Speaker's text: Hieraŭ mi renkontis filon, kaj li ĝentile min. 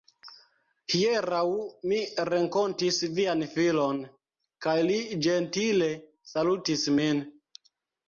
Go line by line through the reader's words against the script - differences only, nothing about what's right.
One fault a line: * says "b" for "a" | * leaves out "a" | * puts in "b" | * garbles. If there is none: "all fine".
* puts in "vian"
* puts in "salutis"